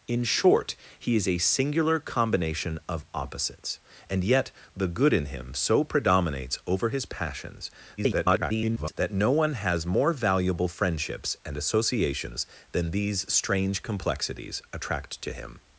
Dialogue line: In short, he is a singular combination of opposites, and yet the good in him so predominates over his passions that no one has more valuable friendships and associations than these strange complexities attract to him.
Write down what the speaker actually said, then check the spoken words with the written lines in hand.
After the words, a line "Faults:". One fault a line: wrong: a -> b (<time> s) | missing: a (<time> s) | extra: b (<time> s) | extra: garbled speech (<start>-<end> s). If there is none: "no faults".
In short, he is a singular combination of opposites, and yet the good in him so predominates over his passions [garbled] that no one has more valuable friendships and associations than these strange complexities attract to him.
Faults:
extra: garbled speech (8.0-8.9 s)